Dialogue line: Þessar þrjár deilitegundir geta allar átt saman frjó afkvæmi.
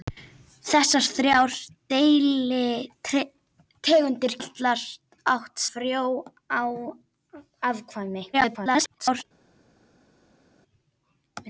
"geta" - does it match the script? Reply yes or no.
no